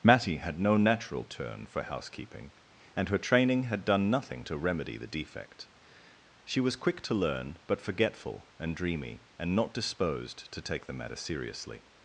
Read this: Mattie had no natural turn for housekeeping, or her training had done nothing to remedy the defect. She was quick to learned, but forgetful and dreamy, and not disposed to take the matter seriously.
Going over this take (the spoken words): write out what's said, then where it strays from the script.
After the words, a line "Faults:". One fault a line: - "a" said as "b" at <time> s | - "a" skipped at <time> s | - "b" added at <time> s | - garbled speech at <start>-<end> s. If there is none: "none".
Mattie had no natural turn for housekeeping, and her training had done nothing to remedy the defect. She was quick to learn, but forgetful and dreamy, and not disposed to take the matter seriously.
Faults:
- "or" said as "and" at 3.0 s
- "learned" said as "learn" at 7.1 s